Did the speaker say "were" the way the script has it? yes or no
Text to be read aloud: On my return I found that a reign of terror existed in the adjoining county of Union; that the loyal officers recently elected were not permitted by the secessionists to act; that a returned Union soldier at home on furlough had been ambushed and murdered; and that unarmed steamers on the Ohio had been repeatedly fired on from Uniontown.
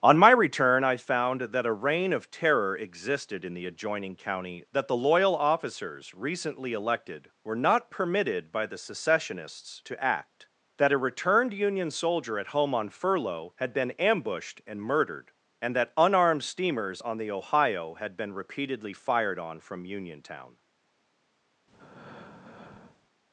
yes